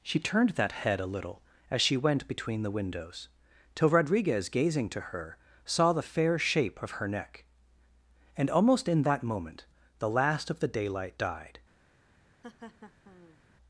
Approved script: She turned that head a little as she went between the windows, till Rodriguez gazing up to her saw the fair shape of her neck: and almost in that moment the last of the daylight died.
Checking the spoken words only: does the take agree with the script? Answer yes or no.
no